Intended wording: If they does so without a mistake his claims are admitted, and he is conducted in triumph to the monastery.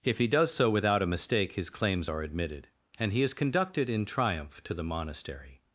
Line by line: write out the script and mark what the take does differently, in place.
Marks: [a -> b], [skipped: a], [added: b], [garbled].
If [they -> he] does so without a mistake his claims are admitted, and he is conducted in triumph to the monastery.